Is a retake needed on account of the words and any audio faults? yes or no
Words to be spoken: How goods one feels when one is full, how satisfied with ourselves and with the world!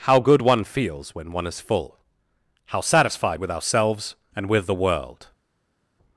yes